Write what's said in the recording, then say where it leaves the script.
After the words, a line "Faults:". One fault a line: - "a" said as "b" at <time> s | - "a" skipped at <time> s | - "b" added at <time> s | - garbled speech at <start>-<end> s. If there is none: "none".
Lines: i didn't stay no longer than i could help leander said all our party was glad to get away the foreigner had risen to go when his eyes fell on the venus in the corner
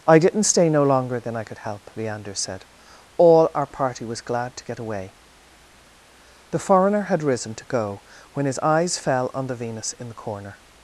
i didn't stay no longer than i could help leander said all our party was glad to get away the foreigner had risen to go when his eyes fell on the venus in the corner
Faults:
none